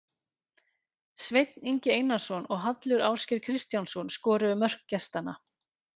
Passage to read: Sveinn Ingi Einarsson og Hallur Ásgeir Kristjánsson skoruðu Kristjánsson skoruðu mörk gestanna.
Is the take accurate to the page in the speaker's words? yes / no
no